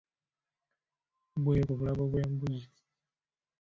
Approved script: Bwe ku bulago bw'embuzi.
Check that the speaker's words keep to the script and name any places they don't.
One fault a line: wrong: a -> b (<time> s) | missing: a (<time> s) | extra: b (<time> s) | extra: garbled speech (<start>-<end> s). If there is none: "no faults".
no faults